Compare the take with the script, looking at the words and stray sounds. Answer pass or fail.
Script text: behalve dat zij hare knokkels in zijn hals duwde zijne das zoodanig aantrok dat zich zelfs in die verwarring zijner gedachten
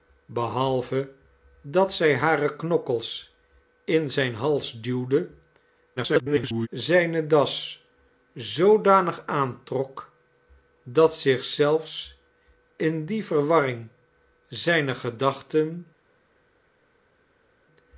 fail